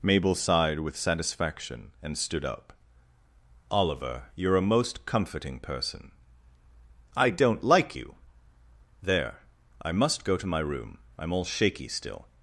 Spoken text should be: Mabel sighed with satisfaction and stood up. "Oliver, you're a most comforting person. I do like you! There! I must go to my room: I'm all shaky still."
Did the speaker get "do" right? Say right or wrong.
wrong